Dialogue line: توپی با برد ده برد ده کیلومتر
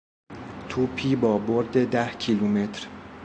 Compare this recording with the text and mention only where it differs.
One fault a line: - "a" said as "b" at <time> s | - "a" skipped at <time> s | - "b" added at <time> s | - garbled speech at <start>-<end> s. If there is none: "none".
- "برد ده" skipped at 2.1 s